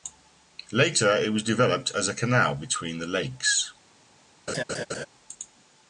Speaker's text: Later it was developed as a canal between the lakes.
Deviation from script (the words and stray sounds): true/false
true